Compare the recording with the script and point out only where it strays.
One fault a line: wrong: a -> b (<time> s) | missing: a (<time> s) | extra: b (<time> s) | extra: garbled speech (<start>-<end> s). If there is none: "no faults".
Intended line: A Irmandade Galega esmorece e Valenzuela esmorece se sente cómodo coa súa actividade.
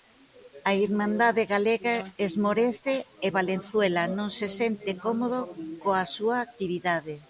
wrong: esmorece -> non (4.2 s)